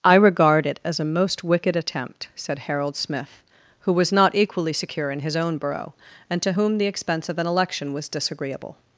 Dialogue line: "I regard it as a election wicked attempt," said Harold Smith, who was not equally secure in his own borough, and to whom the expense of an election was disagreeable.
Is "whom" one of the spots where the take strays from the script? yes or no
no